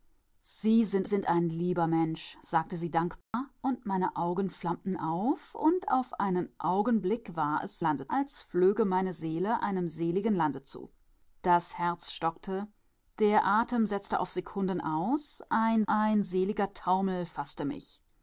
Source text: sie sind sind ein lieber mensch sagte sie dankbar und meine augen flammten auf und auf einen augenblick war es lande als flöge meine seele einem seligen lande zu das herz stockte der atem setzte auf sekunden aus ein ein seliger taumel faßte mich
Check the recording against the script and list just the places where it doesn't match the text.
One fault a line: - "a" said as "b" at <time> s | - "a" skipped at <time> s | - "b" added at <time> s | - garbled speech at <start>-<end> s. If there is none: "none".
none